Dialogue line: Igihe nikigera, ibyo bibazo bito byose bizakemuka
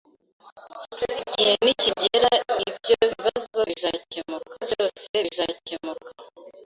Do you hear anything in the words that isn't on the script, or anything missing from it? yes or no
yes